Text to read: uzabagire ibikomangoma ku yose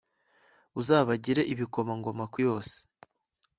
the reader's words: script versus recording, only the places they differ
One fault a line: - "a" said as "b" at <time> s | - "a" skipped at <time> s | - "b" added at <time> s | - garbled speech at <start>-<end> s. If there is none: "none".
none